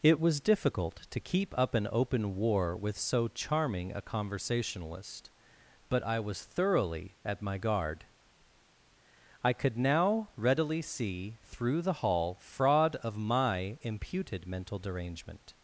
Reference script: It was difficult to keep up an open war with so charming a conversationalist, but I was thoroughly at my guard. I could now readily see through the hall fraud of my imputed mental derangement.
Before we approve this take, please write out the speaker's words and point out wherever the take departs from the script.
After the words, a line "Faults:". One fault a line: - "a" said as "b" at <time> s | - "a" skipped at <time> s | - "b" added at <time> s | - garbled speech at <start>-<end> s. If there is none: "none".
It was difficult to keep up an open war with so charming a conversationalist, but I was thoroughly at my guard. I could now readily see through the hall fraud of my imputed mental derangement.
Faults:
none